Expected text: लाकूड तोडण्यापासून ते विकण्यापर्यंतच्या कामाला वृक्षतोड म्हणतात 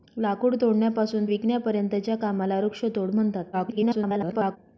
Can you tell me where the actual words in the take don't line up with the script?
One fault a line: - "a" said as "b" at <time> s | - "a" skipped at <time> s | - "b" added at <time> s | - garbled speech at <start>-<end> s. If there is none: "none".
- "ते" skipped at 1.2 s
- garbled speech at 3.5-4.6 s